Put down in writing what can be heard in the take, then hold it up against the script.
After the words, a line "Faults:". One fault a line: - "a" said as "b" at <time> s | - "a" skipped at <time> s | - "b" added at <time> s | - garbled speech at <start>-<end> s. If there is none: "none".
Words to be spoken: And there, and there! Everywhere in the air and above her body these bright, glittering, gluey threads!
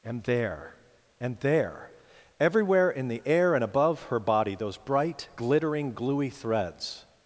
And there, and there! Everywhere in the air and above her body those bright, glittering, gluey threads!
Faults:
- "these" said as "those" at 4.5 s